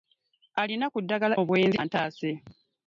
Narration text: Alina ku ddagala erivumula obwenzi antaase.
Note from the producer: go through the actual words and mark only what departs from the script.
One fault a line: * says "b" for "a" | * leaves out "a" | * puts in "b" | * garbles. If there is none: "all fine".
* leaves out "erivumula"